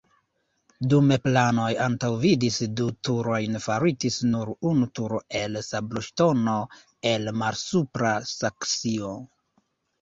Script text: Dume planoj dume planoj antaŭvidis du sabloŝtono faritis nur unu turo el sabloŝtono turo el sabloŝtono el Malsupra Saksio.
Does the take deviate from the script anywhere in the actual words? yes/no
yes